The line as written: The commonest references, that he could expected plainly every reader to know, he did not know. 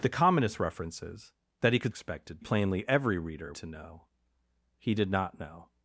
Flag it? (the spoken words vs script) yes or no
no